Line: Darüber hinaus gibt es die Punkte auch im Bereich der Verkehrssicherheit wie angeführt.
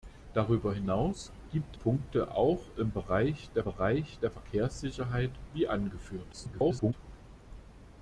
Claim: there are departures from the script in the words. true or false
true